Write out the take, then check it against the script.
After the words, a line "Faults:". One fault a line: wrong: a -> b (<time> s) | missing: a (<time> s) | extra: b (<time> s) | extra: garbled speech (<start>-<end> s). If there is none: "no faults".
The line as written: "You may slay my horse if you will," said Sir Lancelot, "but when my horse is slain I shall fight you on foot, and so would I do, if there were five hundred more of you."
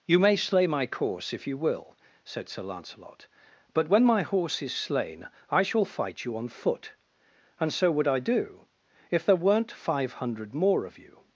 "You may slay my course if you will," said Sir Lancelot, "but when my horse is slain I shall fight you on foot, and so would I do, if there weren't five hundred more of you."
Faults:
wrong: horse -> course (0.9 s)
wrong: were -> weren't (9.3 s)